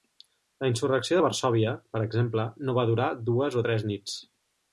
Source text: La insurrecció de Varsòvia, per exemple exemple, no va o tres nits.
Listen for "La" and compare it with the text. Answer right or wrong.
right